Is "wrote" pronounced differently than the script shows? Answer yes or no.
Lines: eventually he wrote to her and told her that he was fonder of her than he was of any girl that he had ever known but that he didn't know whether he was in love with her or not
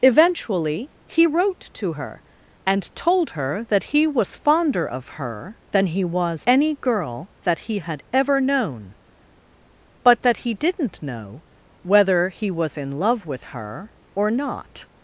no